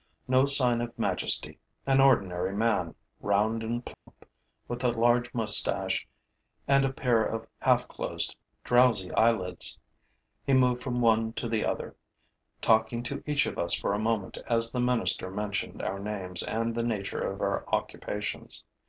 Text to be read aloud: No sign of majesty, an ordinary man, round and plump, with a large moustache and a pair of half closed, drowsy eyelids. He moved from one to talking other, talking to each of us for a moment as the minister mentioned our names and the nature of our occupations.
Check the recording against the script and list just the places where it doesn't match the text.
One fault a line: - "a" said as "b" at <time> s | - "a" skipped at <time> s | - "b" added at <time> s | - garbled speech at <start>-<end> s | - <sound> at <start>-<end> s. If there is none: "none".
- dropout at 3.9-4.1 s
- "talking" said as "the" at 11.5 s